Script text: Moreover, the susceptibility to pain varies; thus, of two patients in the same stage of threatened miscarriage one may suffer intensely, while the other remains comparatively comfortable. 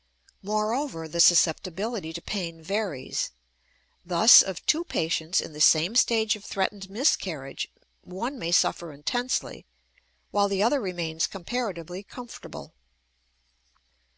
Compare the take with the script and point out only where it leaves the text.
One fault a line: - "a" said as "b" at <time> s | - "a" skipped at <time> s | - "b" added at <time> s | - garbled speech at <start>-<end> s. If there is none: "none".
none